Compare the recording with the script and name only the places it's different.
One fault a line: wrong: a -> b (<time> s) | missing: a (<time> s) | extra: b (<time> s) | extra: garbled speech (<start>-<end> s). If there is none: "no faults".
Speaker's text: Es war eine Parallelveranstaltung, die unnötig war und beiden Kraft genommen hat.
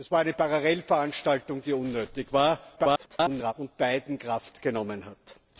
extra: garbled speech (2.8-3.5 s)